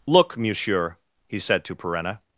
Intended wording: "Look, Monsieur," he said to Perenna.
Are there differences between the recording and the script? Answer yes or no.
no